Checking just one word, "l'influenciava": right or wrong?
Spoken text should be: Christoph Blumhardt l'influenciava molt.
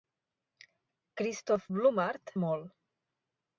wrong